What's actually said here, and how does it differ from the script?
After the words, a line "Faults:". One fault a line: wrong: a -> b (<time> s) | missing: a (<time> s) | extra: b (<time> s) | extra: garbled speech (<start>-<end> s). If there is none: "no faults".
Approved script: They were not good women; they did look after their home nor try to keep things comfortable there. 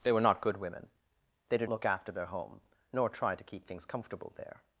They were not good women; they did look after their home nor try to keep things comfortable there.
Faults:
no faults